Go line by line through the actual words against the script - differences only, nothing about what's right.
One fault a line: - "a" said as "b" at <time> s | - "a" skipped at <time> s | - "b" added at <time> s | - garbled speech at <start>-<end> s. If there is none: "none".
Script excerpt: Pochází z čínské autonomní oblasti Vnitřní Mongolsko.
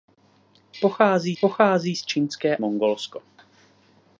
- "pochází" added at 1.4 s
- "autonomní oblasti Vnitřní" skipped at 2.6 s